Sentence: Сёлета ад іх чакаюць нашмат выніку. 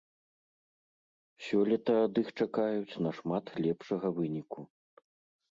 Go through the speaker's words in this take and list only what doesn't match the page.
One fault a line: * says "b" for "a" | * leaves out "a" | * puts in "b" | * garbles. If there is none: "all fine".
* puts in "лепшага"